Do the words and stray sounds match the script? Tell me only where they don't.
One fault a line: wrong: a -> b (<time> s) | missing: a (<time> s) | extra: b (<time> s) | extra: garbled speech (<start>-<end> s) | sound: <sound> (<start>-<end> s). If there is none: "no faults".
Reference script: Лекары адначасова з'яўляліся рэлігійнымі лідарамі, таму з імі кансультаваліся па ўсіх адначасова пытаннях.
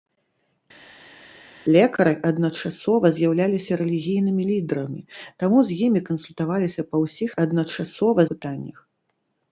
no faults